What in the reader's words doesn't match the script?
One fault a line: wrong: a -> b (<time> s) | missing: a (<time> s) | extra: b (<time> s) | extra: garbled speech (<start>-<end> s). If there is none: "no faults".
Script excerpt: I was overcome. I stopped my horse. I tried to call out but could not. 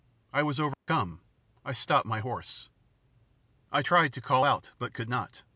no faults